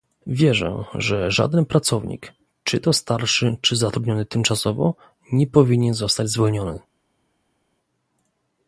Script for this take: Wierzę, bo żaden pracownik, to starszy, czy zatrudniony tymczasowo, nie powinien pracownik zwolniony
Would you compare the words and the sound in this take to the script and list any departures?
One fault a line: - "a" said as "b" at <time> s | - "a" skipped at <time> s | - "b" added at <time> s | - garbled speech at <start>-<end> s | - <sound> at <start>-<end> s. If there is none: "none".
- "bo" said as "że" at 0.9 s
- "czy" added at 2.6 s
- "pracownik" said as "zostać" at 5.9 s